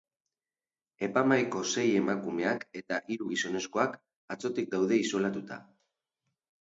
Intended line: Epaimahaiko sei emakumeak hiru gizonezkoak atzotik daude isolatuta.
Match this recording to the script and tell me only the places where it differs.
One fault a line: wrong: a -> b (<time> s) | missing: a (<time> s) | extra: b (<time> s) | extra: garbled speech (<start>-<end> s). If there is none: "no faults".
extra: eta (2.8 s)